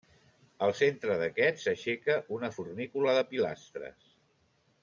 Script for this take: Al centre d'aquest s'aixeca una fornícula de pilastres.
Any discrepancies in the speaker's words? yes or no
no